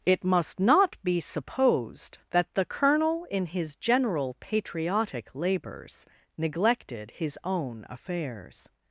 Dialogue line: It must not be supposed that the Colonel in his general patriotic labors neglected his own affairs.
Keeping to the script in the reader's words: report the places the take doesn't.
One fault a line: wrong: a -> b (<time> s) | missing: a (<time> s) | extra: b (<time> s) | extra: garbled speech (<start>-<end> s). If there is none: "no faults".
no faults